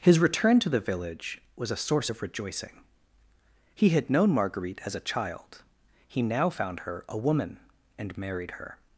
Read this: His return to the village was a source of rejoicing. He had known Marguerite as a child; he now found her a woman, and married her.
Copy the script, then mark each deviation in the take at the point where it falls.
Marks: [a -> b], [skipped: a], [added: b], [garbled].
His return to the village was a source of rejoicing. He had known Marguerite as a child; he now found her a woman, and married her.